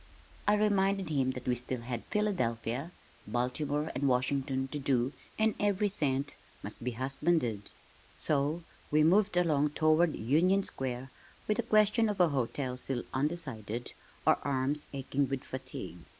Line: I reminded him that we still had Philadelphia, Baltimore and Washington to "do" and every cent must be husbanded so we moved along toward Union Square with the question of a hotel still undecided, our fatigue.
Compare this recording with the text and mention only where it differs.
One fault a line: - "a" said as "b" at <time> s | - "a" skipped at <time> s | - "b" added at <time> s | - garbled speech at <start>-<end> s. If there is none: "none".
- "arms aching with" added at 14.4 s